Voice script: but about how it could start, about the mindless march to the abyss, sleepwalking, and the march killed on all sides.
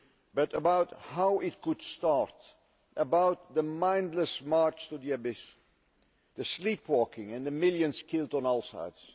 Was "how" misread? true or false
false